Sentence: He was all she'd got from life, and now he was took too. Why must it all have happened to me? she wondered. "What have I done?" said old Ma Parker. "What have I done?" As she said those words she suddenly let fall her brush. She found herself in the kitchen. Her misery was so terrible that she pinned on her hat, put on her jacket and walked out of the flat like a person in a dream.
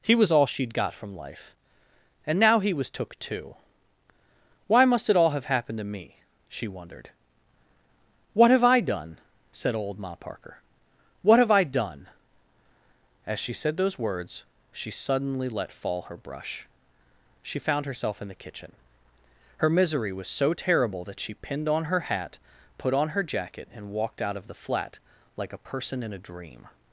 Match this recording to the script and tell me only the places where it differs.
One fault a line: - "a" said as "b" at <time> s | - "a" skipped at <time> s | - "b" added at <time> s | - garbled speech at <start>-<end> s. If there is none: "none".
none